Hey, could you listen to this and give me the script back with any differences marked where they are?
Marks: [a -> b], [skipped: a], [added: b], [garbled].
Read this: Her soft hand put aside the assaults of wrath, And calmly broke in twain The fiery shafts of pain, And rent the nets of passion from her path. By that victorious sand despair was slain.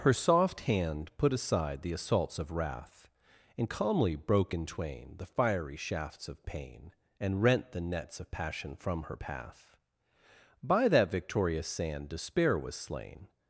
Her soft hand put aside the assaults of wrath, And calmly broke in twain The fiery shafts of pain, And rent the nets of passion from her path. By that victorious sand despair was slain.